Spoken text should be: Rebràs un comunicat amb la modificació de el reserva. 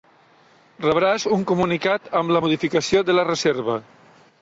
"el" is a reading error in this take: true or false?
true